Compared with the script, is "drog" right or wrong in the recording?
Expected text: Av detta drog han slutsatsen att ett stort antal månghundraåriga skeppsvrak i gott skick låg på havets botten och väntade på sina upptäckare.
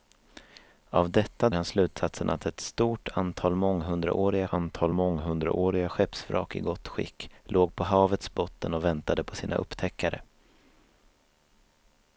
wrong